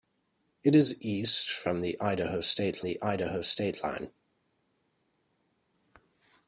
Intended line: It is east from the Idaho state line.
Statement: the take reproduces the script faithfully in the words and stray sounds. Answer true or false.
false